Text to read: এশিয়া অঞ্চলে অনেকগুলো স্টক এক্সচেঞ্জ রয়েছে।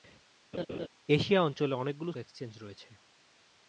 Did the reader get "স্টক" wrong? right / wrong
wrong